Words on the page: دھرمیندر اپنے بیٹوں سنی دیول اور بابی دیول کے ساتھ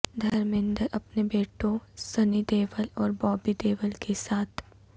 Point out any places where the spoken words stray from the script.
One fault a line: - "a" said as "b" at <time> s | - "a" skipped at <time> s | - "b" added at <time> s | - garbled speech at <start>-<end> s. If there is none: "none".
none